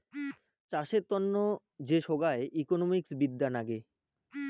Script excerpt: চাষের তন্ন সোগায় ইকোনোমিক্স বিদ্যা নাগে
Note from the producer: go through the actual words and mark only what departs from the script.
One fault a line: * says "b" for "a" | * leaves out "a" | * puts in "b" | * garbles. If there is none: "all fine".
* puts in "যে"